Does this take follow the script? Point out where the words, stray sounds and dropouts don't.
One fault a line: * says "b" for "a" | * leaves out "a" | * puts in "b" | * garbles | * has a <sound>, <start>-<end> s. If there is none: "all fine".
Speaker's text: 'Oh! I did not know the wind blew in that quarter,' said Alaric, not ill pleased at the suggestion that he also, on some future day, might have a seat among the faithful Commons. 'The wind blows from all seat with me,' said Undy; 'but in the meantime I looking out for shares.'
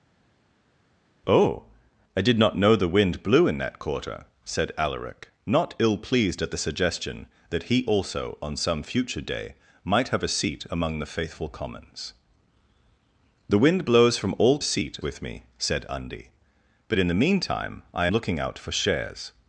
all fine